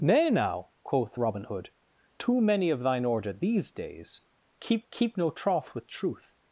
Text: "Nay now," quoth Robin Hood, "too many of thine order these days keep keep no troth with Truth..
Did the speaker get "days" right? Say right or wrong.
right